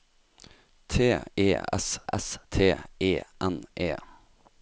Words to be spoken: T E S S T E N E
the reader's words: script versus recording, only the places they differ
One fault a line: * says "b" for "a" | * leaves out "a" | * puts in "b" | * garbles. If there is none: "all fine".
all fine